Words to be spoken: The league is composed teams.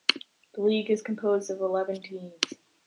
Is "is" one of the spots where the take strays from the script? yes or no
no